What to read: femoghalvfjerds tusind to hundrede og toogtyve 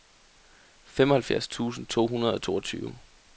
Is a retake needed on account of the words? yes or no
no